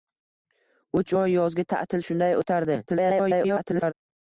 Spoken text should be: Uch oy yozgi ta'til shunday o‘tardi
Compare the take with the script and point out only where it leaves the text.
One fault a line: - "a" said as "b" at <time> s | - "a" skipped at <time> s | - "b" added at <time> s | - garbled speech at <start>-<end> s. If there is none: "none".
- garbled speech at 2.9-3.9 s